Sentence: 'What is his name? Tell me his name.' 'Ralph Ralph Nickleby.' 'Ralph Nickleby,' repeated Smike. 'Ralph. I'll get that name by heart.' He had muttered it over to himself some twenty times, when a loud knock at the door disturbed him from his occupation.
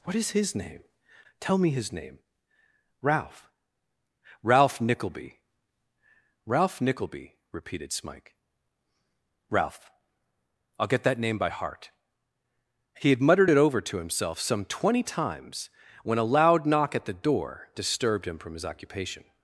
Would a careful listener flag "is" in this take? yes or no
no